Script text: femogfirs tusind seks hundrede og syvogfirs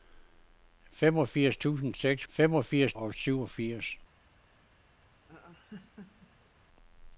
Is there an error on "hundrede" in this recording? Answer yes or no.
yes